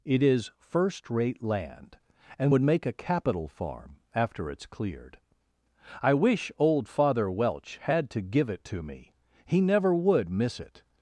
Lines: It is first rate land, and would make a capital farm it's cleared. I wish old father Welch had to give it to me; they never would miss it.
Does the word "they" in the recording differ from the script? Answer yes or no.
yes